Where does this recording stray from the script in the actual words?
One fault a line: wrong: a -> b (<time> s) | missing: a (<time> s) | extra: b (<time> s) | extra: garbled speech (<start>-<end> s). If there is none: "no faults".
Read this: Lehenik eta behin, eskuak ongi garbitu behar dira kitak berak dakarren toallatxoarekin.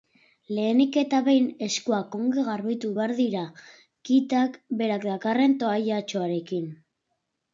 no faults